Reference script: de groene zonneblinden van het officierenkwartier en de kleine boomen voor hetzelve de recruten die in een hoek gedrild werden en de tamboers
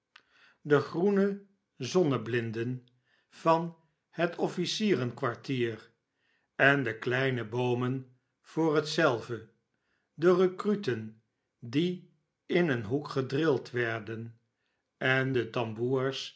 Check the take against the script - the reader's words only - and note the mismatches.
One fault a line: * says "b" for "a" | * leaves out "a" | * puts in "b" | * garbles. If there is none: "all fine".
all fine